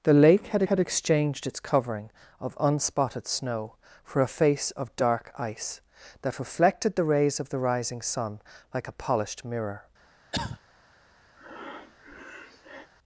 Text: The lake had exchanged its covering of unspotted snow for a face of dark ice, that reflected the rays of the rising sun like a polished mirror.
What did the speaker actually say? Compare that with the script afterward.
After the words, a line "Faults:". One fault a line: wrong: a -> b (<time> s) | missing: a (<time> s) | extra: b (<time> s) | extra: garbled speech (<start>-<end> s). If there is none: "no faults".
The lake had had exchanged its covering of unspotted snow for a face of dark ice, that reflected the rays of the rising sun like a polished mirror.
Faults:
extra: had (0.6 s)